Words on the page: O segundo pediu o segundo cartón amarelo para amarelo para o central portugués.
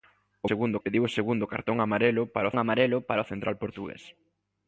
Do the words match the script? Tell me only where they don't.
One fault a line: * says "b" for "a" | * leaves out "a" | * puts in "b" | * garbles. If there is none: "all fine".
all fine